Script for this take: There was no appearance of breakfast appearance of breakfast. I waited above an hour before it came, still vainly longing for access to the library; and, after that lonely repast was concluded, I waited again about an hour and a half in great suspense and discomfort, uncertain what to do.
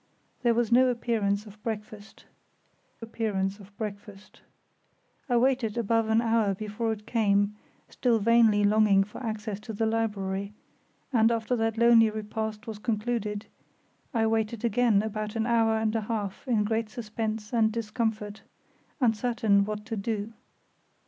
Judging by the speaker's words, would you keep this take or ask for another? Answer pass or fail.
pass